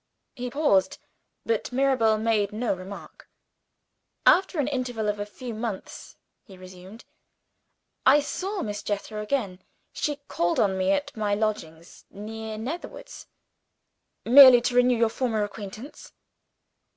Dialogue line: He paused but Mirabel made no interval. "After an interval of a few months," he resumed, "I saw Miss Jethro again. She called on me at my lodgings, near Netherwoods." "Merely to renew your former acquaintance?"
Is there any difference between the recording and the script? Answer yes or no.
yes